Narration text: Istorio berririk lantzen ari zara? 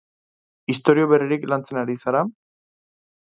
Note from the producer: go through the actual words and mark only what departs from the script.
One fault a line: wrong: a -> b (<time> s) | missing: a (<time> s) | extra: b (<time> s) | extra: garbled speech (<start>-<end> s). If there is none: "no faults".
no faults